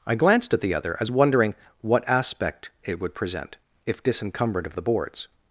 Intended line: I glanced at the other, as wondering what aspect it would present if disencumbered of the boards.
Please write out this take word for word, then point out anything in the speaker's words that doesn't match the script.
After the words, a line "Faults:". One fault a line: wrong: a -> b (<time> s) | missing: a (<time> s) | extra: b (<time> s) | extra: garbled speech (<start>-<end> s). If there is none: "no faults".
I glanced at the other, as wondering what aspect it would present if disencumbered of the boards.
Faults:
no faults